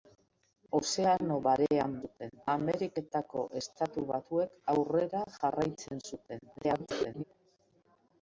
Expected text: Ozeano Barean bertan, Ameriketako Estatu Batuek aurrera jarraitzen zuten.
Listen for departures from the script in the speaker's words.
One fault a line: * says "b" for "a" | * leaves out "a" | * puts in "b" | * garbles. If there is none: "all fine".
* says "zuten" for "bertan"
* garbles